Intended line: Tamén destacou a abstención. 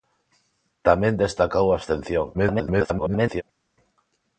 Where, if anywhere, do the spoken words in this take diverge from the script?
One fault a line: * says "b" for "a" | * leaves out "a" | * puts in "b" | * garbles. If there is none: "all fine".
* garbles